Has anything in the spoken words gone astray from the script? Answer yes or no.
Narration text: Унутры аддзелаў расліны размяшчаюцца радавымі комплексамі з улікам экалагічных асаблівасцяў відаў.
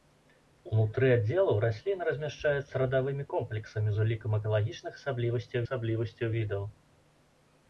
yes